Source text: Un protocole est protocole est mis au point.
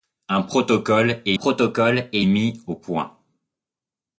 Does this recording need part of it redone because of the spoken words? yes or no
no